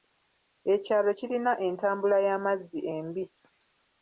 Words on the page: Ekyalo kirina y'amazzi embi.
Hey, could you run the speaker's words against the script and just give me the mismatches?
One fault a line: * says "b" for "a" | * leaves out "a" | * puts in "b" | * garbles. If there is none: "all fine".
* puts in "entambula"